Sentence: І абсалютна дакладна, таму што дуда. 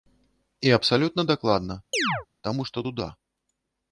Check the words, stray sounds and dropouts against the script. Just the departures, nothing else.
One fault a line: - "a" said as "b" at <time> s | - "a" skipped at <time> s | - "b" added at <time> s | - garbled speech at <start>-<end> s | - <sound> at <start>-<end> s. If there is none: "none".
- chirp at 1.9-2.3 s